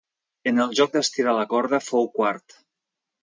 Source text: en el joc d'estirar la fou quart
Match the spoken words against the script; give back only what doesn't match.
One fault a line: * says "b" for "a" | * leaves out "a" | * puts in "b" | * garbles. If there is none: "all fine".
* puts in "corda"